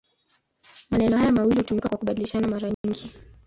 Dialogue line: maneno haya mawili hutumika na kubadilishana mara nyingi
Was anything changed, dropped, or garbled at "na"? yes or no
yes